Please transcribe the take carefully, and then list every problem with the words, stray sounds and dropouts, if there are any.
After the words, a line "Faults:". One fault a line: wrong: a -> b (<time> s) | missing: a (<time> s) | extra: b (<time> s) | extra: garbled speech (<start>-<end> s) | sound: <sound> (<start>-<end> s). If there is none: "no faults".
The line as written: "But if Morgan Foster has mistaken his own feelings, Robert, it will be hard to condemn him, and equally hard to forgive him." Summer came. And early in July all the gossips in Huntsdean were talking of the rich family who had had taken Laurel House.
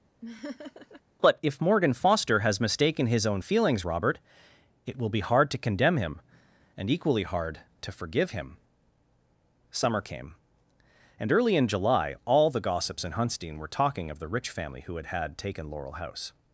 "But if Morgan Foster has mistaken his own feelings, Robert, it will be hard to condemn him, and equally hard to forgive him." Summer came. And early in July all the gossips in Huntsdean were talking of the rich family who had had taken Laurel House.
Faults:
sound: laugh (0.2-1.0 s)